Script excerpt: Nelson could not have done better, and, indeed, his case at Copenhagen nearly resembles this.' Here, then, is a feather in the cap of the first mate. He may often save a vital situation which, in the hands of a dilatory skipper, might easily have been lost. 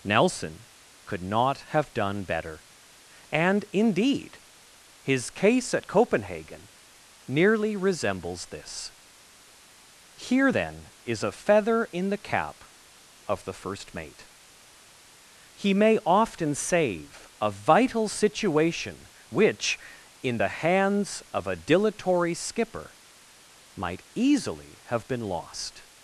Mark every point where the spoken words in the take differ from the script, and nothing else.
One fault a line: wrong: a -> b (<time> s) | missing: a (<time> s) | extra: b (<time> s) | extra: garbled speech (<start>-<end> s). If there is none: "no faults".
no faults